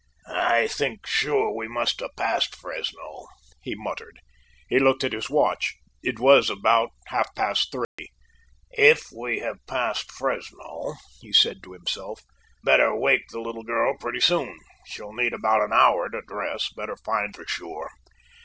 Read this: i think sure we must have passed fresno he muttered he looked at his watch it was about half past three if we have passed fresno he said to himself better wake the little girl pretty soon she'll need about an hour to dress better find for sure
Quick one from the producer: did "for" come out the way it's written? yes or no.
yes